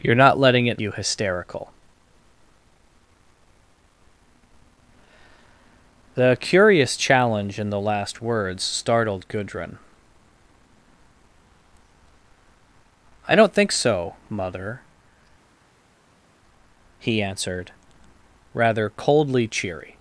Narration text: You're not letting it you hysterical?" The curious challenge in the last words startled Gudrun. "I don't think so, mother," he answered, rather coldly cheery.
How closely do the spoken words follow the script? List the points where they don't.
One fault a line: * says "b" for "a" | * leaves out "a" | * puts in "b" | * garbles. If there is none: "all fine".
all fine